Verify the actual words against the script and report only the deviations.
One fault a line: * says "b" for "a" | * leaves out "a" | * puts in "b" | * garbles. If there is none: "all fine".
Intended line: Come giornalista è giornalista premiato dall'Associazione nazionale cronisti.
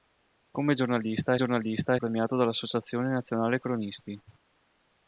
all fine